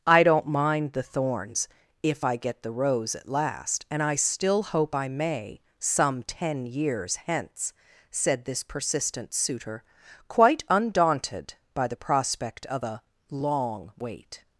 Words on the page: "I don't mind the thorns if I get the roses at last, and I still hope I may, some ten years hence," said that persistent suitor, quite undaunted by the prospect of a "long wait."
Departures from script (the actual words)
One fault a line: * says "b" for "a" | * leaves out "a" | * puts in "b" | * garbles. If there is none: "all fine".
* says "rose" for "roses"
* says "this" for "that"